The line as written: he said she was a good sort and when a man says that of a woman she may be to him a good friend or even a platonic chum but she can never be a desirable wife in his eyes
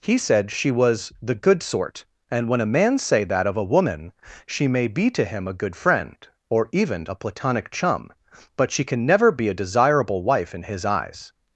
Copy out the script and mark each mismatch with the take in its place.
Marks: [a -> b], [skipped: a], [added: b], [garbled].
he said she was [a -> the] good sort and when a man [says -> say] that of a woman she may be to him a good friend or even a platonic chum but she can never be a desirable wife in his eyes